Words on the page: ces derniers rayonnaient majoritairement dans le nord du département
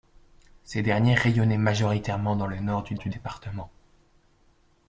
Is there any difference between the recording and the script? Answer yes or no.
yes